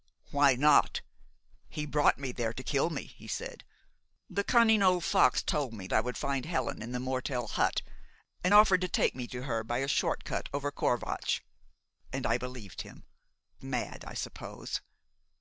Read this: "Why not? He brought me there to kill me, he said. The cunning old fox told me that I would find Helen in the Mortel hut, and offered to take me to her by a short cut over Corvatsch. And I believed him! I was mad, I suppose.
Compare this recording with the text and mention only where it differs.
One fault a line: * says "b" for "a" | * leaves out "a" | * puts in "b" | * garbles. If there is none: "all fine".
* leaves out "that"
* leaves out "I was"